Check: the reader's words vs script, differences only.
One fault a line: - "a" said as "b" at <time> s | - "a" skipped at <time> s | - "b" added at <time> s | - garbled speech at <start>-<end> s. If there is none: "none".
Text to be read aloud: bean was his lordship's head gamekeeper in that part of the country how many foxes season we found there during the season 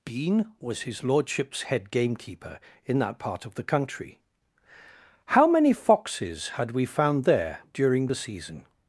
- "season" said as "had" at 6.5 s